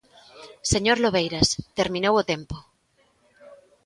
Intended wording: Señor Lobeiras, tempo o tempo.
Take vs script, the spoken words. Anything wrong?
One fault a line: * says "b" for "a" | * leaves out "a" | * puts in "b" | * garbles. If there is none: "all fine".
* says "terminou" for "tempo"